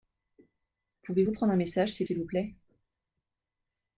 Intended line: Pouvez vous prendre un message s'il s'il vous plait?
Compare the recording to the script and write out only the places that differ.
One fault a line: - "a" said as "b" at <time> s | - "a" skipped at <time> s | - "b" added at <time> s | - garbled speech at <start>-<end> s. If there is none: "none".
none